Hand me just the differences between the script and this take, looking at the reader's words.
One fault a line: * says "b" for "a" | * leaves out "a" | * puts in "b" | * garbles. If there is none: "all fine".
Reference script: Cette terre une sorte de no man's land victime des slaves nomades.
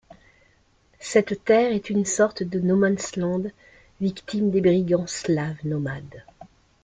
* puts in "est"
* puts in "brigands"